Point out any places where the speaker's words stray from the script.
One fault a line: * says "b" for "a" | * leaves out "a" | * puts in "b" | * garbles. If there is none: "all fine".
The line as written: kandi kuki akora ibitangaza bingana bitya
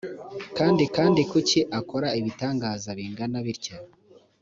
* puts in "kandi"